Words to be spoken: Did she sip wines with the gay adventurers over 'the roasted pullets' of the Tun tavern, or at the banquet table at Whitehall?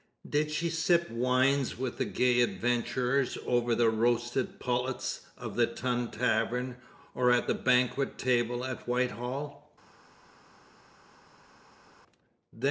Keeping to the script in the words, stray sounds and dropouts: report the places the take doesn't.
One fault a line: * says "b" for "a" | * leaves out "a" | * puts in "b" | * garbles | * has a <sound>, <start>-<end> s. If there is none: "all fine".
all fine